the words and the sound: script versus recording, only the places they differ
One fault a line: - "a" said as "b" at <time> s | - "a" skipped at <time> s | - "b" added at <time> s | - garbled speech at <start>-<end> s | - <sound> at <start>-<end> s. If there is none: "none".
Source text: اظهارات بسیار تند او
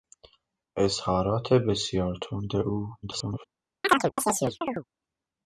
- garbled speech at 3.0-3.4 s
- chirp at 3.8-4.8 s